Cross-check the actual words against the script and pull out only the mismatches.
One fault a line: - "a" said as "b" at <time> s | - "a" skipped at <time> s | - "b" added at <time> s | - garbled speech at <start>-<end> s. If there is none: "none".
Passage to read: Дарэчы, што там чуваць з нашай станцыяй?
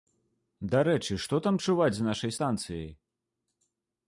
none